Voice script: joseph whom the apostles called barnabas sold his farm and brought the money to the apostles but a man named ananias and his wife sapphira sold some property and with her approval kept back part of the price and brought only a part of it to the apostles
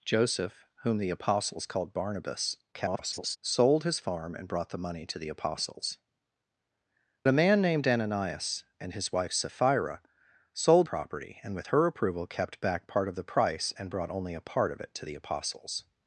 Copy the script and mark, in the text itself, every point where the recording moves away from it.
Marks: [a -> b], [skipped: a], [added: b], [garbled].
joseph whom the apostles called barnabas [garbled] sold his farm and brought the money to the apostles [skipped: but] a man named ananias and his wife sapphira sold [skipped: some] property and with her approval kept back part of the price and brought only a part of it to the apostles